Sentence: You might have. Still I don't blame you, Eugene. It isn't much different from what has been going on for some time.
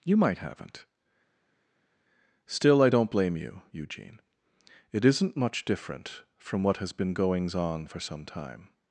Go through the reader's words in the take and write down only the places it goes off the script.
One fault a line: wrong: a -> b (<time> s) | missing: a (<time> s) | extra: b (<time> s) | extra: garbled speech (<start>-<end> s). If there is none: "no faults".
wrong: have -> haven't (0.4 s)
wrong: going -> goings (7.1 s)